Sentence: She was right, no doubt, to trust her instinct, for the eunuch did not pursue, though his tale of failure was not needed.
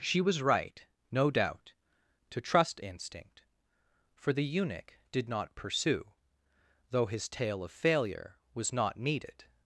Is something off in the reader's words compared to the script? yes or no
yes